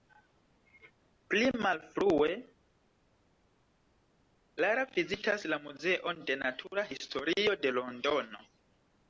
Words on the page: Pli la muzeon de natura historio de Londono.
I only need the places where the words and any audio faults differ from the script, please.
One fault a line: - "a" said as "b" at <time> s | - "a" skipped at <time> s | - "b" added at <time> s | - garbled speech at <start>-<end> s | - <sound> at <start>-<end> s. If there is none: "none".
- "malfrue Lara vizitas" added at 1.6 s